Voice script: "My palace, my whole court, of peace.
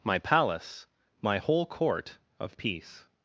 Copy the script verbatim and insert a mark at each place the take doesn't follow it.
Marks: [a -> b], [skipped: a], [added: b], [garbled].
"My palace, my whole court, of peace.